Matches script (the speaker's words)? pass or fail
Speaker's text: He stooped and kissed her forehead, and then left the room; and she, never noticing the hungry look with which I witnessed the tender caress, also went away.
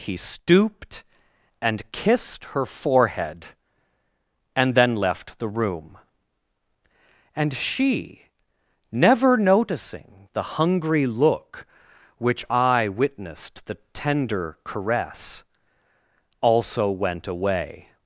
fail